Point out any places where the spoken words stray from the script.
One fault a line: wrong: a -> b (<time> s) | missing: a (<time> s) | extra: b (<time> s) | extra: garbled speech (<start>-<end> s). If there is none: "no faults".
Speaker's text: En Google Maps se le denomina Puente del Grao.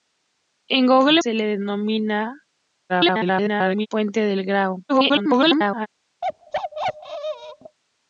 missing: Maps (1.2 s)
extra: garbled speech (2.9-3.9 s)
extra: garbled speech (4.9-5.9 s)